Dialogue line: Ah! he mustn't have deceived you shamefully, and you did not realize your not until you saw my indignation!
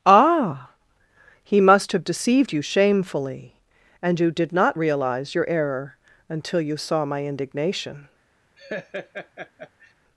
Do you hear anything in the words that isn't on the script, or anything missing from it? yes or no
yes